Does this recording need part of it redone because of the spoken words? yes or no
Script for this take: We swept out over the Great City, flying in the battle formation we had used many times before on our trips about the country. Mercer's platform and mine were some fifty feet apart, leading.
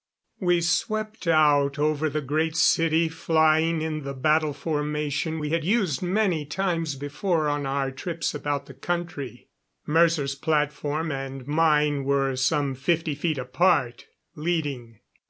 no